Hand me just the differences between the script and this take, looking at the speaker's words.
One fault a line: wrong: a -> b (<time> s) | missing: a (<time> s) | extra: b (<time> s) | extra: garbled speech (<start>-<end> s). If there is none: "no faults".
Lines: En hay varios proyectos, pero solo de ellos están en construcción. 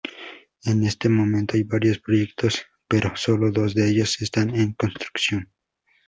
extra: este momento (0.8 s)
extra: dos (3.5 s)